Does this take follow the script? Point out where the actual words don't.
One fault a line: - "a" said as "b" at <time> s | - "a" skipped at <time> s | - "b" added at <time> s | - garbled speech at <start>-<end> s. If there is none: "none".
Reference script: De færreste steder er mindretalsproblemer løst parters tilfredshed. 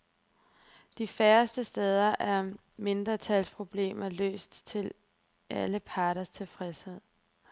- "til alle" added at 4.7 s